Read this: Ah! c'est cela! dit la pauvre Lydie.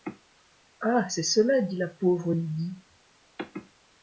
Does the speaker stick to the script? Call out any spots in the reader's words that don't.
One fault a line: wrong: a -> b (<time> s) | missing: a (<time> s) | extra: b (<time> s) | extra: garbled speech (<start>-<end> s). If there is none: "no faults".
no faults